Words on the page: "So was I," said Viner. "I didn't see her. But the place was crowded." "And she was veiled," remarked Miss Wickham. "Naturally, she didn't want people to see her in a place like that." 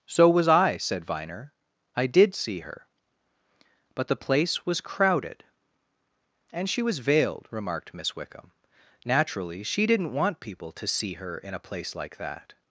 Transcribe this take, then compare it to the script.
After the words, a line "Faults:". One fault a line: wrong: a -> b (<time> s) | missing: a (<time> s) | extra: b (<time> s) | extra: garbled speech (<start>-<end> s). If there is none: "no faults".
"So was I," said Viner. "I did see her. But the place was crowded." "And she was veiled," remarked Miss Wickham. "Naturally, she didn't want people to see her in a place like that."
Faults:
wrong: didn't -> did (2.1 s)